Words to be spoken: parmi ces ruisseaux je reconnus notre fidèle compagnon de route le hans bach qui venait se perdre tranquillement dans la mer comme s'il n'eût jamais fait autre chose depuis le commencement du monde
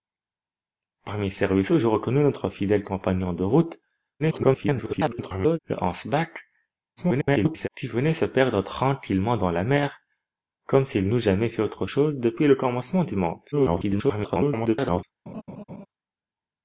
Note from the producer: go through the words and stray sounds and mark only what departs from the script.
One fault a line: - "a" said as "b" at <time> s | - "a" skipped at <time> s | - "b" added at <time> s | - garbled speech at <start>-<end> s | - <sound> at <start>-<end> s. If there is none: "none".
- garbled speech at 4.2-5.6 s
- garbled speech at 7.0-7.7 s
- garbled speech at 13.5-15.0 s
- laugh at 15.3-15.9 s